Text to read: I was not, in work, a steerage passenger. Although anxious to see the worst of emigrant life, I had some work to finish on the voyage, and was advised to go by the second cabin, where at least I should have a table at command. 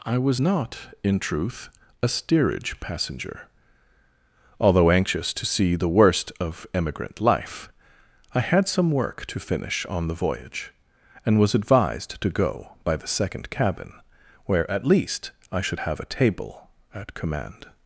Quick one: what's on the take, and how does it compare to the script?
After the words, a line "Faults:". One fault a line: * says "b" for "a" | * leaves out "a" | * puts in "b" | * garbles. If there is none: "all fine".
I was not, in truth, a steerage passenger. Although anxious to see the worst of emigrant life, I had some work to finish on the voyage, and was advised to go by the second cabin, where at least I should have a table at command.
Faults:
* says "truth" for "work"